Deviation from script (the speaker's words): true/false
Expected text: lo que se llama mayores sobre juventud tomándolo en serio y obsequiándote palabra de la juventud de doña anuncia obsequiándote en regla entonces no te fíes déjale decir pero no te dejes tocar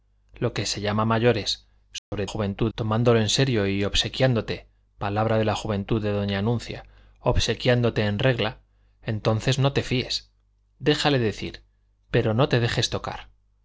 false